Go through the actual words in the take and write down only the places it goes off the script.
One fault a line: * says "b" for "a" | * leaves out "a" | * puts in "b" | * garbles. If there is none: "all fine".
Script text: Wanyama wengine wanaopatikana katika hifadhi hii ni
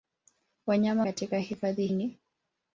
* leaves out "wengine wanaopatikana"
* leaves out "hii"